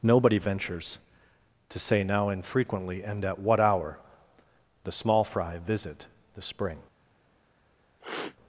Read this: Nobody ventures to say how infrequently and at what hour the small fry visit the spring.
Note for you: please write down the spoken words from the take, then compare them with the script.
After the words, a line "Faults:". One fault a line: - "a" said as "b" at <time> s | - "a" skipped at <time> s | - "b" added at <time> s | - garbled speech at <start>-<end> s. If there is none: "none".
Nobody ventures to say now infrequently and at what hour the small fry visit the spring.
Faults:
- "how" said as "now" at 2.0 s